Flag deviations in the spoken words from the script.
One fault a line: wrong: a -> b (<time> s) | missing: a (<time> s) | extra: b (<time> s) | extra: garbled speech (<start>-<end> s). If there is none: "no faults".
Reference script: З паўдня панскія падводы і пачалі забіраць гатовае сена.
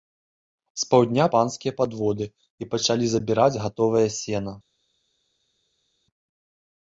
no faults